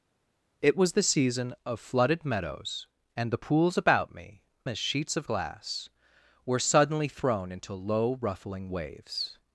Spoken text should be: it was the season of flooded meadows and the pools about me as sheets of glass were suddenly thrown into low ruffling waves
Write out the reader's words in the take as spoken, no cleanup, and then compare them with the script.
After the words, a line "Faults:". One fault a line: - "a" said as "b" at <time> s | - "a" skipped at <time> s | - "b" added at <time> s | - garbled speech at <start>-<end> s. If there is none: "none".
it was the season of flooded meadows and the pools about me as sheets of glass were suddenly thrown into low ruffling waves
Faults:
none